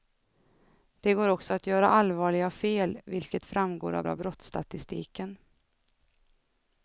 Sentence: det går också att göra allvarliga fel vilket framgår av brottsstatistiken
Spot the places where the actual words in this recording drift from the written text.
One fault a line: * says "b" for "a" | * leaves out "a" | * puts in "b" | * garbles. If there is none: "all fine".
* puts in "av"